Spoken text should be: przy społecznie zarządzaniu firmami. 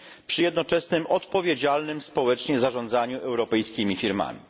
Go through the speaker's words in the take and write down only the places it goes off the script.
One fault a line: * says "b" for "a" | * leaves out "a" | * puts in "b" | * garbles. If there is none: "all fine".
* puts in "jednoczesnym odpowiedzialnym"
* puts in "europejskimi"